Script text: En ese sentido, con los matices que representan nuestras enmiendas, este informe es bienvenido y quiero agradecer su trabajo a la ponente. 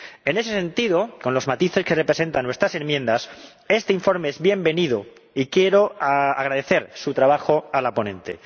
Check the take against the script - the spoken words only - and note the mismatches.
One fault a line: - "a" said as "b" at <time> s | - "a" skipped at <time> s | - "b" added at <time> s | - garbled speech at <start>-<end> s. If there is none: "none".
none